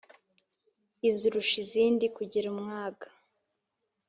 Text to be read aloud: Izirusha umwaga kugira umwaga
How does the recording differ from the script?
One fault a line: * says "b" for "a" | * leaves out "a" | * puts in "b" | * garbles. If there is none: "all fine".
* says "izindi" for "umwaga"